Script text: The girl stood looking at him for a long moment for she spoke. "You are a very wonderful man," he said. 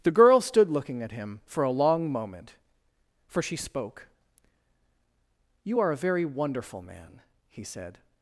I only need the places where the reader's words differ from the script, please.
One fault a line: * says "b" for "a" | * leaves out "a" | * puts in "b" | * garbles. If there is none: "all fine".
all fine